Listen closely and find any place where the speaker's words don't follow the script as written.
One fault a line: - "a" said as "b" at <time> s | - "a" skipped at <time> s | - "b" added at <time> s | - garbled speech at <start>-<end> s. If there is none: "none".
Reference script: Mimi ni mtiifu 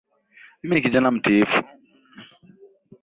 - "kijana" added at 0.8 s